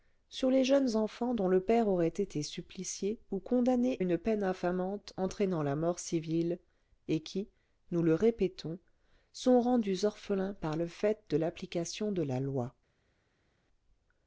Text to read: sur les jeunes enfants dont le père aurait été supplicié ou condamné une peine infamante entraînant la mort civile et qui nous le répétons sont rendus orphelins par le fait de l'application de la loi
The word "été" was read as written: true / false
true